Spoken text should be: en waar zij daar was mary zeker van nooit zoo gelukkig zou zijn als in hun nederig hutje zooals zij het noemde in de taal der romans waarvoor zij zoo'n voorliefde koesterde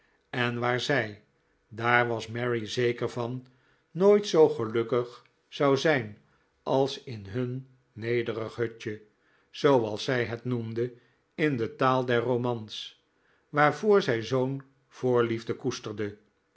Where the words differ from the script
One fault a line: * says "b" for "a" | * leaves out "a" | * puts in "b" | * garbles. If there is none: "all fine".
all fine